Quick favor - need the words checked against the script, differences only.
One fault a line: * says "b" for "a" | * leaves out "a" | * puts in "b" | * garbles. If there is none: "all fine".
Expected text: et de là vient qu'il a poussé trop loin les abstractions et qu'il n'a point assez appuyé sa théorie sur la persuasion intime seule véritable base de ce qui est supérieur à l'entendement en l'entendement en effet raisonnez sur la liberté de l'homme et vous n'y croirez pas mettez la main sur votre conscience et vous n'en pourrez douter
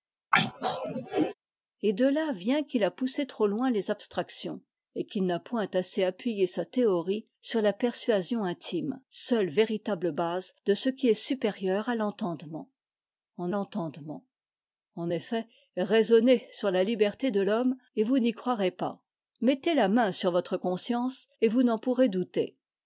all fine